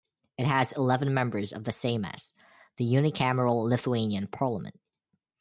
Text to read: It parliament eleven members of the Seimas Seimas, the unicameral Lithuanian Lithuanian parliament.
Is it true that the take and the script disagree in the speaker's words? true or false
true